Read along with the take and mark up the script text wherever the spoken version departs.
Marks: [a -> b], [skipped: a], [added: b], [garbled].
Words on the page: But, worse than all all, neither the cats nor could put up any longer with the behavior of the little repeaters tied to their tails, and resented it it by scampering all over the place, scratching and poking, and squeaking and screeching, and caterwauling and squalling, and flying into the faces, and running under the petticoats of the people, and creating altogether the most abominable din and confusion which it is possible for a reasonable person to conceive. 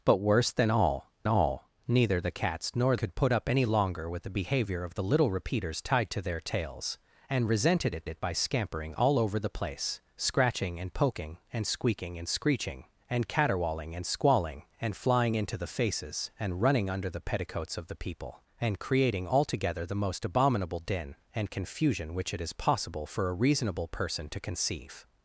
But, worse than all all, neither the cats nor could put up any longer with the behavior of the little repeaters tied to their tails, and resented it it by scampering all over the place, scratching and poking, and squeaking and screeching, and caterwauling and squalling, and flying into the faces, and running under the petticoats of the people, and creating altogether the most abominable din and confusion which it is possible for a reasonable person to conceive.